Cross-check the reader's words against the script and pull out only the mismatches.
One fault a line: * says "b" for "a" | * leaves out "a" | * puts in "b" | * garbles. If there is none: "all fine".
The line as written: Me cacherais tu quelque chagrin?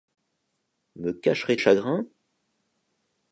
* leaves out "tu quelque"